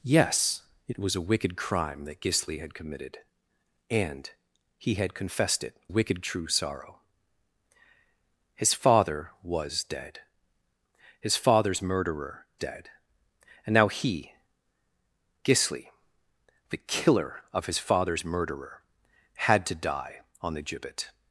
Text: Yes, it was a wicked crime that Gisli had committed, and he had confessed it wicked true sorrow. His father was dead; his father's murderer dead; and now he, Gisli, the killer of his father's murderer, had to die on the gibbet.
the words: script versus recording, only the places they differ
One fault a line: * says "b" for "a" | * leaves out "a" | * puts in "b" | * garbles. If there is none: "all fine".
all fine